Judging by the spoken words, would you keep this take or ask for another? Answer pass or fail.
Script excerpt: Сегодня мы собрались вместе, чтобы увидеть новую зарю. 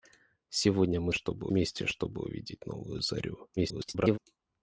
fail